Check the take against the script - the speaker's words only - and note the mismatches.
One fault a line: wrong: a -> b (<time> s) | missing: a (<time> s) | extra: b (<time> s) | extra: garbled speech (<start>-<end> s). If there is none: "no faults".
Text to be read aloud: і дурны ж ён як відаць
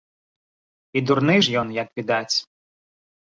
no faults